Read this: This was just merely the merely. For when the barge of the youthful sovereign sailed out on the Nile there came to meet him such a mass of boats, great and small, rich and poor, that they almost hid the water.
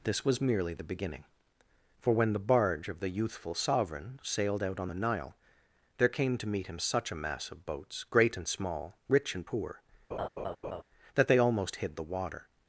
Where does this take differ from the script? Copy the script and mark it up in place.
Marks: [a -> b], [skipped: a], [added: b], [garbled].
This was [skipped: just] merely the [merely. -> beginning] For when the barge of the youthful sovereign sailed out on the Nile there came to meet him such a mass of boats, great and small, rich and poor, that they almost hid the water.